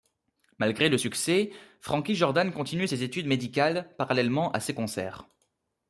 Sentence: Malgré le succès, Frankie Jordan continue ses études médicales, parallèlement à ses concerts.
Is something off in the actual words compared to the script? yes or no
no